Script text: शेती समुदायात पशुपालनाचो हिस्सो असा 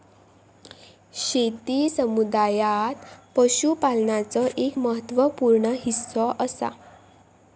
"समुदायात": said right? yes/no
yes